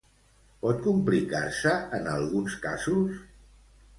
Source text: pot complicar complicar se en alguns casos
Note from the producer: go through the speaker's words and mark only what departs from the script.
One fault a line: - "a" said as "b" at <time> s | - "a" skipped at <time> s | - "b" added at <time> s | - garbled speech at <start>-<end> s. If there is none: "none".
- "complicar" skipped at 1.4 s